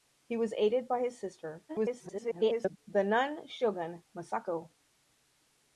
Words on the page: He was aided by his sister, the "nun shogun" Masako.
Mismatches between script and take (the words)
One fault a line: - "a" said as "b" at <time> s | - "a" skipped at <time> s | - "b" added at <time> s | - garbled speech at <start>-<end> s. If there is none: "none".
- garbled speech at 1.7-2.8 s